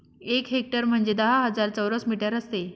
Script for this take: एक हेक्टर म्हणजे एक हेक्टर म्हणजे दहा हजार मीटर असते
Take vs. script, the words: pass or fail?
fail